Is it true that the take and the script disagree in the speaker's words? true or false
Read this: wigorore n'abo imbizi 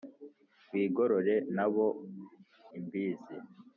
false